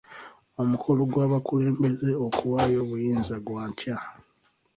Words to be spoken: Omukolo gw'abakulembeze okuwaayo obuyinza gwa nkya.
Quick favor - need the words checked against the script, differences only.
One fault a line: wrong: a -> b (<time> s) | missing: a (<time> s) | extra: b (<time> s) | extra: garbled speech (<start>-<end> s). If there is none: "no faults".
no faults